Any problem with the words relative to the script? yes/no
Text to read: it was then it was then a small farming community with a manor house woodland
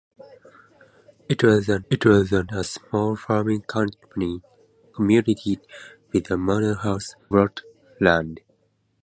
no